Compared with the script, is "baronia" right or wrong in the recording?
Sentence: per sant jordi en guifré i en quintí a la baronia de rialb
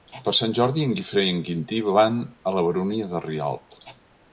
right